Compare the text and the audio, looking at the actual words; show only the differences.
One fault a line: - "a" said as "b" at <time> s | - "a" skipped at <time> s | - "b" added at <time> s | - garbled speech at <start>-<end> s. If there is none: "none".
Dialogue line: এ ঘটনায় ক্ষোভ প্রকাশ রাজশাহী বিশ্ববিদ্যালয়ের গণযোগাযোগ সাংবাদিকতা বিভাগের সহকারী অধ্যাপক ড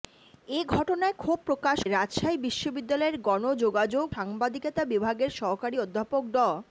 none